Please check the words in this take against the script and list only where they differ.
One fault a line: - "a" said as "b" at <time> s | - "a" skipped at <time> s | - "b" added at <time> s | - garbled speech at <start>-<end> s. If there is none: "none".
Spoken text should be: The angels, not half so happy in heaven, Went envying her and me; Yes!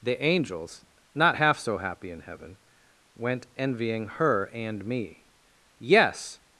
none